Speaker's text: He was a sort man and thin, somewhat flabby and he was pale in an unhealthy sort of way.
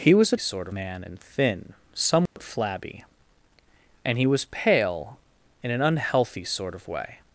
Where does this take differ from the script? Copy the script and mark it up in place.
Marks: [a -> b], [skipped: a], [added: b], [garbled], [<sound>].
He was a sort man and thin, somewhat [dropout] flabby and he was pale in an unhealthy sort of way.